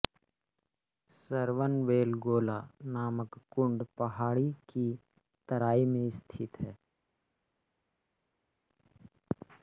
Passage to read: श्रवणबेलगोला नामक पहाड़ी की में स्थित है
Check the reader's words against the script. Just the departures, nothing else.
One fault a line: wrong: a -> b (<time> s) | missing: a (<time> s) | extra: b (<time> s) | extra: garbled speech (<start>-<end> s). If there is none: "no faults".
extra: कुंड (3.5 s)
extra: तराई (5.5 s)